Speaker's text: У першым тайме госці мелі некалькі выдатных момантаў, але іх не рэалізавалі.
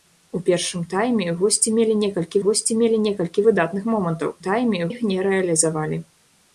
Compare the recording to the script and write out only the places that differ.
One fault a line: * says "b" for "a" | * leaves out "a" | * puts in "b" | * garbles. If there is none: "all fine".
* puts in "госці мелі некалькі"
* says "тайме" for "але"